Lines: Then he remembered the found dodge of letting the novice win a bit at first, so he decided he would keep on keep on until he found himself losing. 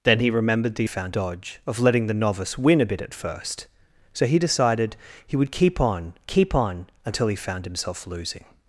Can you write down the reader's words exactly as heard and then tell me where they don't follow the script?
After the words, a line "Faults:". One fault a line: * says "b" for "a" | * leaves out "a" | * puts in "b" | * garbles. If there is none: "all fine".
Then he remembered the found dodge of letting the novice win a bit at first, so he decided he would keep on keep on until he found himself losing.
Faults:
all fine